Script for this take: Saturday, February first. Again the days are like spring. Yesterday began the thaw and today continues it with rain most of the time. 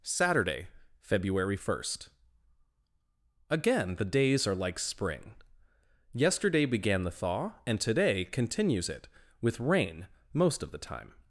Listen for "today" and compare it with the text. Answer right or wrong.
right